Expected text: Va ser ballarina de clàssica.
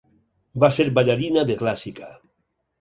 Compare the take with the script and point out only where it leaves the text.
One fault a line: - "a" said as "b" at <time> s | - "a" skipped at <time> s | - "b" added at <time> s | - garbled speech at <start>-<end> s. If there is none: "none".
none